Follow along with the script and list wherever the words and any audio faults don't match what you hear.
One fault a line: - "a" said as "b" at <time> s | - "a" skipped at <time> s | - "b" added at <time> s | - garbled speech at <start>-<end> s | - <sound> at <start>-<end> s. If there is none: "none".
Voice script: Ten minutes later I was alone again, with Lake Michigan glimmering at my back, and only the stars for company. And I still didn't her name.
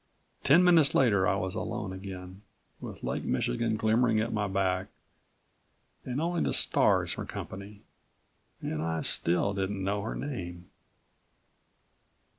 - "know" added at 9.8 s